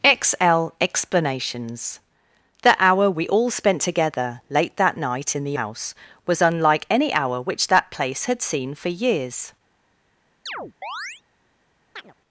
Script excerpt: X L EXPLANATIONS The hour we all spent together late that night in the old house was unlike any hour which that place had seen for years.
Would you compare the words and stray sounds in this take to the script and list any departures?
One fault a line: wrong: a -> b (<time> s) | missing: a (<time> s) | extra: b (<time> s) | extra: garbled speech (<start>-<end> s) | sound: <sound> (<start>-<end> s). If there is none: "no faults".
missing: old (5.6 s)
sound: chirp (10.5-11.2 s)
sound: chirp (12.0-12.2 s)